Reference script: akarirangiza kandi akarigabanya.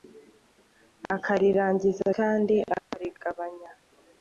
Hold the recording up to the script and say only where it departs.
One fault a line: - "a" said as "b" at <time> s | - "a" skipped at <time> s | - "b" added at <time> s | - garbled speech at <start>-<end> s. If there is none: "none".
none